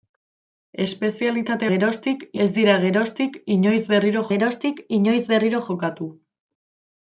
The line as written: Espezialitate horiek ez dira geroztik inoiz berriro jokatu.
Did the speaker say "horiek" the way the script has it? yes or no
no